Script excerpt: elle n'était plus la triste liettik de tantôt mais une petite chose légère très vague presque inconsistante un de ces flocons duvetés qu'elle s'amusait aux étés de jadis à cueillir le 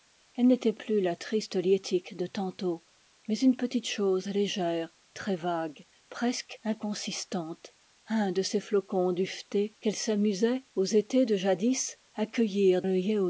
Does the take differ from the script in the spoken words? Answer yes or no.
no